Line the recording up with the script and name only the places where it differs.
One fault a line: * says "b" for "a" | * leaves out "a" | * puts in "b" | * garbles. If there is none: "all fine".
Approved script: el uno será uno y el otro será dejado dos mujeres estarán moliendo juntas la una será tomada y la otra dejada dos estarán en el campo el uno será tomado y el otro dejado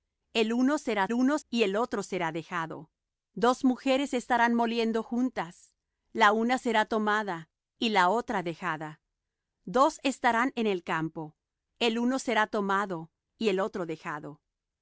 all fine